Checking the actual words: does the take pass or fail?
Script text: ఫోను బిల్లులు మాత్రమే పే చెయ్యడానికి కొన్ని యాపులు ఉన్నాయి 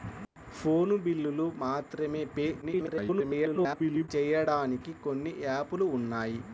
fail